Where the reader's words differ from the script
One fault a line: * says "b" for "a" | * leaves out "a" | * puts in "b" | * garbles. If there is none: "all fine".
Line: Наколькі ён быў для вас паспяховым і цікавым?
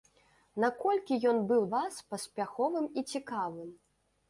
* leaves out "для"